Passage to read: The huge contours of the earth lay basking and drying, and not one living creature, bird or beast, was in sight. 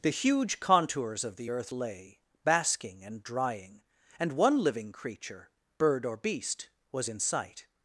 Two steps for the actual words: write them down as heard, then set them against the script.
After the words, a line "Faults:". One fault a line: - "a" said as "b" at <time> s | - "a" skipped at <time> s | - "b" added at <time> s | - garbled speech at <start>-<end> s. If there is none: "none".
The huge contours of the earth lay basking and drying, and one living creature, bird or beast, was in sight.
Faults:
- "not" skipped at 4.3 s